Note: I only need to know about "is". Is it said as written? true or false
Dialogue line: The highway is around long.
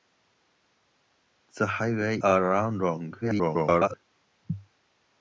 false